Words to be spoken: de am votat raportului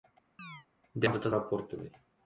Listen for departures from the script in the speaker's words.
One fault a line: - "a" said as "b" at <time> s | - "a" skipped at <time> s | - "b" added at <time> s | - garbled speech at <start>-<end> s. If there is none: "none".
none